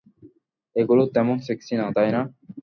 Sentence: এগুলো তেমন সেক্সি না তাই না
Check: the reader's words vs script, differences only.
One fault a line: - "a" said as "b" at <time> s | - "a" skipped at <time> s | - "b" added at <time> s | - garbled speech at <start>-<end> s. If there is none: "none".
none